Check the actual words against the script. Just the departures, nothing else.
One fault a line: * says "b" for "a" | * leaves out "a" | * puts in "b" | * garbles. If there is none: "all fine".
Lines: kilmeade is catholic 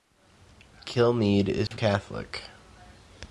all fine